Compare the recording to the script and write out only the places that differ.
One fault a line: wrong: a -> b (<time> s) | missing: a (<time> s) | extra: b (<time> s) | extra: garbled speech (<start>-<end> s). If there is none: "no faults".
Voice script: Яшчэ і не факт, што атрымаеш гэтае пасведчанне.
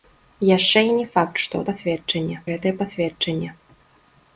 wrong: атрымаеш -> пасведчанне (1.7 s)